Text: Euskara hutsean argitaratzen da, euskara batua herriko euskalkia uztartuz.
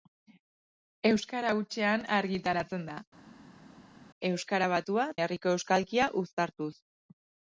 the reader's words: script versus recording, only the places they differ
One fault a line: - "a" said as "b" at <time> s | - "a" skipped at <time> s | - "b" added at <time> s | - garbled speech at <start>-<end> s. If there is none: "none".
none